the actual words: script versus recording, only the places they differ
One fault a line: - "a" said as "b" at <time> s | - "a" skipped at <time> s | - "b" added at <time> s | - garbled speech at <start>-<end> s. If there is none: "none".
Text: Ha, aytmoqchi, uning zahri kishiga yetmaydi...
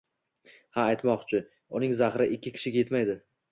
- "ikki" added at 2.4 s